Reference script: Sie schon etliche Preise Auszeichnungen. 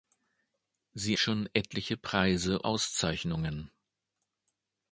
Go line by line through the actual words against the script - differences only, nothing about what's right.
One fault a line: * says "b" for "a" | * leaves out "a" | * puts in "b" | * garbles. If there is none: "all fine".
all fine